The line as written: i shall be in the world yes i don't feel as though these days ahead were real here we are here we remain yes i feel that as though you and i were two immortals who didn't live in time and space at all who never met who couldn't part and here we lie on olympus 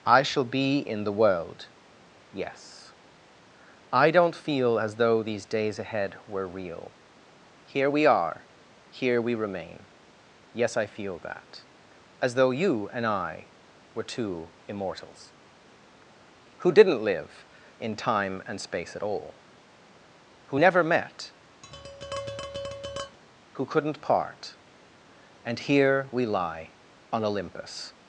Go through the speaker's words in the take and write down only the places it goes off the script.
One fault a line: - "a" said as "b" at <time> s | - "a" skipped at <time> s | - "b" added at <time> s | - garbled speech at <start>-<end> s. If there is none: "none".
none